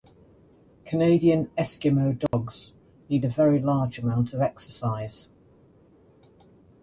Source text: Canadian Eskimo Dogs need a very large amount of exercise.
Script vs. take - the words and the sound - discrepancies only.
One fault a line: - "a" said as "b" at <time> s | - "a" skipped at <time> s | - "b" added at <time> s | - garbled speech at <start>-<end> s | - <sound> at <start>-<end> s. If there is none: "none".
- dropout at 2.3-2.3 s